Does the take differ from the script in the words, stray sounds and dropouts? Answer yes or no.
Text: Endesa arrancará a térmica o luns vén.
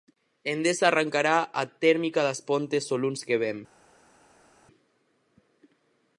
yes